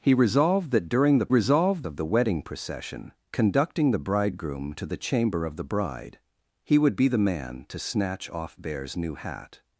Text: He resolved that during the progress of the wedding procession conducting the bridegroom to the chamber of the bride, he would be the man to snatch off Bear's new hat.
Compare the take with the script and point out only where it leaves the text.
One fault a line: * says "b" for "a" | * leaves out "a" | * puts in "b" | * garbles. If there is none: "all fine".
* says "resolved" for "progress"